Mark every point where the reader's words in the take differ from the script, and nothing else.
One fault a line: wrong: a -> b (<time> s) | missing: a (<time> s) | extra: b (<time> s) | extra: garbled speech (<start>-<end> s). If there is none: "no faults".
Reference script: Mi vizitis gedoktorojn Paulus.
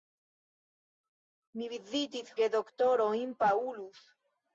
no faults